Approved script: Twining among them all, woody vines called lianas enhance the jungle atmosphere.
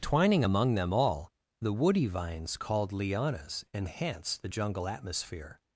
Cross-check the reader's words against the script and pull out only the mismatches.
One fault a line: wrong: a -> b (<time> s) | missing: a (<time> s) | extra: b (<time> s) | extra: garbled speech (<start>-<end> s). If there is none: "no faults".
extra: the (1.6 s)